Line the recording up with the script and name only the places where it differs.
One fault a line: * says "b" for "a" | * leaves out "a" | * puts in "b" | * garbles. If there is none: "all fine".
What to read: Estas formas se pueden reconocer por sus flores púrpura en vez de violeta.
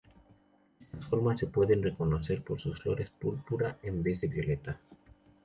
all fine